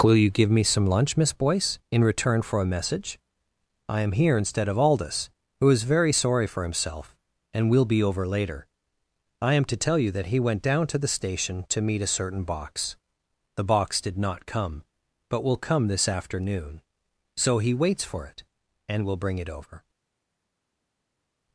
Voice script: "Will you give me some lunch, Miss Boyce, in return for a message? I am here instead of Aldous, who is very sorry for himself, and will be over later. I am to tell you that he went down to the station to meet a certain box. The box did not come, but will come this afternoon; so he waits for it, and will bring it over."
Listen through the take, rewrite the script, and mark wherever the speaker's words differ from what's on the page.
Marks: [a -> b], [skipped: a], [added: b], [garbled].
"Will you give me some lunch, Miss Boyce, in return for a message? I am here instead of Aldous, who is very sorry for himself, and will be over later. I am to tell you that he went down to the station to meet a certain box. The box did not come, but will come this afternoon; so he waits for it, and will bring it over."